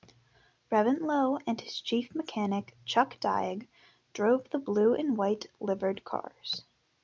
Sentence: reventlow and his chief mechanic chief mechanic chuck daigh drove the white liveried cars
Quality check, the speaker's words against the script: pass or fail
fail